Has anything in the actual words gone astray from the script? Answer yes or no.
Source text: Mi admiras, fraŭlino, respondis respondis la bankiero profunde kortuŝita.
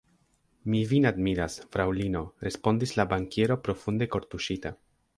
yes